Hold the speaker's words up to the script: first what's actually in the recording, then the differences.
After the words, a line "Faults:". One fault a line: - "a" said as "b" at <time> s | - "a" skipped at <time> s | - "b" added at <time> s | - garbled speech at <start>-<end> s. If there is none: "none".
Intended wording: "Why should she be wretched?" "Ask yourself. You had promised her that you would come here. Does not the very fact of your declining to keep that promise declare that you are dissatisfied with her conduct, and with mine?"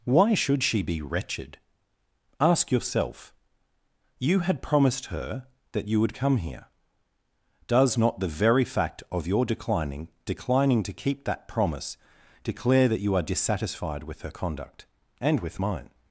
"Why should she be wretched?" "Ask yourself. You had promised her that you would come here. Does not the very fact of your declining declining to keep that promise declare that you are dissatisfied with her conduct, and with mine?"
Faults:
- "declining" added at 10.2 s